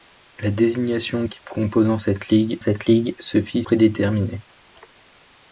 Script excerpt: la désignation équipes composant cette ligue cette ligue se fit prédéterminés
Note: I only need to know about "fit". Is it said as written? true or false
true